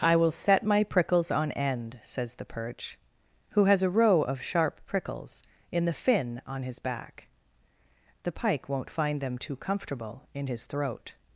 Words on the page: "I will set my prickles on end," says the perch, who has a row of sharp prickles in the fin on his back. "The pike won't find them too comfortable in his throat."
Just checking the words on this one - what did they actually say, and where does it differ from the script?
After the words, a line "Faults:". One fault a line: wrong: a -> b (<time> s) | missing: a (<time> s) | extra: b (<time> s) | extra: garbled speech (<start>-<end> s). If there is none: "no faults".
"I will set my prickles on end," says the perch, who has a row of sharp prickles in the fin on his back. "The pike won't find them too comfortable in his throat."
Faults:
no faults